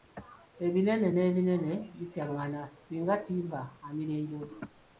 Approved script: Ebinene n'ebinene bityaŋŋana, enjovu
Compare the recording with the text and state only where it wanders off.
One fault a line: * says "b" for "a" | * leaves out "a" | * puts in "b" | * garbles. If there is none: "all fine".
* puts in "singa ttimba amira"